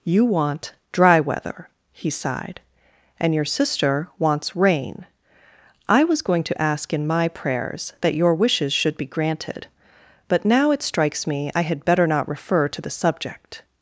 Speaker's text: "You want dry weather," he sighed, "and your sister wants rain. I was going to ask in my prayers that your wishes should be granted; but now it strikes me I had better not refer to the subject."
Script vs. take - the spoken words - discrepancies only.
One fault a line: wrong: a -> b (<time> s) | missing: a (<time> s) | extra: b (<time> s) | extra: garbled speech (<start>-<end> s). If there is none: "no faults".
no faults